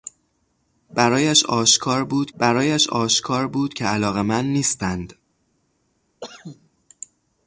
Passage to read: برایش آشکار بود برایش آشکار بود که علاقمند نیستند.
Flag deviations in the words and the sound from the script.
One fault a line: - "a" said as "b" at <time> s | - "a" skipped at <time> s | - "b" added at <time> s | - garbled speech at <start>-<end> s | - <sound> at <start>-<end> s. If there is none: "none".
- cough at 6.2-6.7 s